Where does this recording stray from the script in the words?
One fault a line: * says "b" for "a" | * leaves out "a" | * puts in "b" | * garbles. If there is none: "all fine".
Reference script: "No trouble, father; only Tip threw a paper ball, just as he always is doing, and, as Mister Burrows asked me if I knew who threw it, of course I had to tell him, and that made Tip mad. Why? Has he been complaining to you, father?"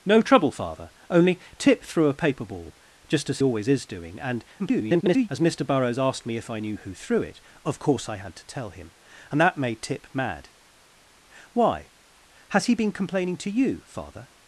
* leaves out "he"
* garbles